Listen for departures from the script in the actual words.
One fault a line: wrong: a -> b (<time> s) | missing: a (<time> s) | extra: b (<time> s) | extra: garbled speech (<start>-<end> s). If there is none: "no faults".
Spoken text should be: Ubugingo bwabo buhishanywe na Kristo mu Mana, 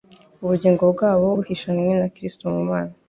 no faults